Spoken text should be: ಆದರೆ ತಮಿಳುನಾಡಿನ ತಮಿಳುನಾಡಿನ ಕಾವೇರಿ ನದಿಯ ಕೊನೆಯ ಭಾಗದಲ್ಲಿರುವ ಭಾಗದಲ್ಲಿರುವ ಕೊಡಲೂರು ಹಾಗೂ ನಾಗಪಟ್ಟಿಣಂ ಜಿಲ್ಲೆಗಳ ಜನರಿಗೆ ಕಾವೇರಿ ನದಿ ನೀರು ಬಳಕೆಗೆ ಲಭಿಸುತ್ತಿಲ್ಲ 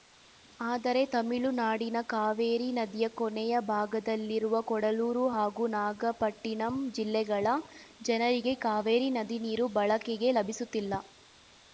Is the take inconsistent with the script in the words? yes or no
yes